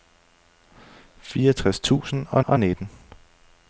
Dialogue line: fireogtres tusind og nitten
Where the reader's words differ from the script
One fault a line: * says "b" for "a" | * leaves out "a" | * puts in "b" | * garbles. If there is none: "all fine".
* puts in "og"